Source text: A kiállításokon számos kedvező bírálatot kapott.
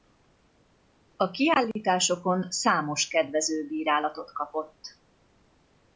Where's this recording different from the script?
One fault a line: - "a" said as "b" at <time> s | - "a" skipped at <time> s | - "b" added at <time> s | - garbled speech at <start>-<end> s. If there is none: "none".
none